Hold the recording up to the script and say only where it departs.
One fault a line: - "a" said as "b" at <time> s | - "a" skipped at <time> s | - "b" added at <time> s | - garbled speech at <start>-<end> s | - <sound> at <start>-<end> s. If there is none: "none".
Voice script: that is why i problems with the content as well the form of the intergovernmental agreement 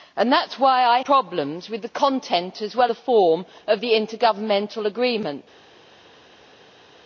none